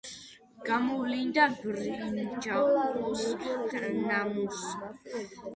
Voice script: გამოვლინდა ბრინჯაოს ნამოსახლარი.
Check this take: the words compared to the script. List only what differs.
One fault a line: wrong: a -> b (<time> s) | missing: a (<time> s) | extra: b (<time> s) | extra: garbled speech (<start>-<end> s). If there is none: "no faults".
no faults